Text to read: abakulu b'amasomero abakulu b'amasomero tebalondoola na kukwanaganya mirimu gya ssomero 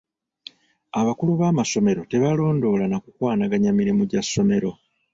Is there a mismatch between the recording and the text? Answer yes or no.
yes